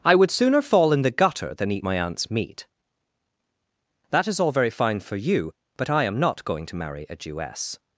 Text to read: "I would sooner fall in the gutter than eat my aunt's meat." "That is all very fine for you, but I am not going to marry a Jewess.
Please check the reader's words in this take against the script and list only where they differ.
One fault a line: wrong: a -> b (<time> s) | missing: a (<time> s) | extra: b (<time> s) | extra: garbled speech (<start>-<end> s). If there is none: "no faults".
no faults